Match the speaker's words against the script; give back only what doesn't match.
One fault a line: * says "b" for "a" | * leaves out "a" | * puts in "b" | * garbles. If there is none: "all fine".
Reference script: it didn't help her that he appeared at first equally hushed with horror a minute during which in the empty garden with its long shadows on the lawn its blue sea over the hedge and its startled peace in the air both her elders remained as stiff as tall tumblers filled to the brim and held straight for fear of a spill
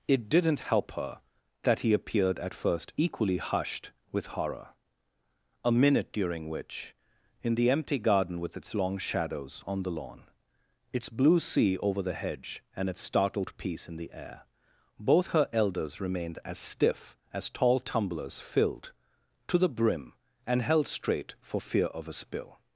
all fine